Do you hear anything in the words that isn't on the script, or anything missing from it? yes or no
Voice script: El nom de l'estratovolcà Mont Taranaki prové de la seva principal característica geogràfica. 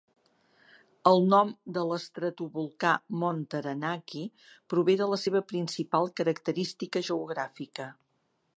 no